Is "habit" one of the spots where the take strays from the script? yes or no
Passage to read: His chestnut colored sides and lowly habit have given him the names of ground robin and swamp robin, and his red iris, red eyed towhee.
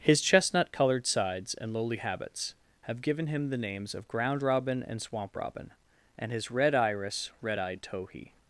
yes